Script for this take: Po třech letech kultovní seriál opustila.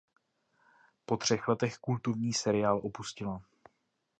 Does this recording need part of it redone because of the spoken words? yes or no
no